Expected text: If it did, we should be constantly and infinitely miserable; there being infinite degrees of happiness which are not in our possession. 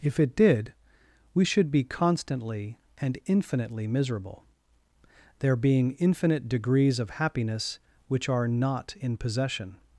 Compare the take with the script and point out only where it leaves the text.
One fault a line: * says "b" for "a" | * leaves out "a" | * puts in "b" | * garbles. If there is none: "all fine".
* leaves out "our"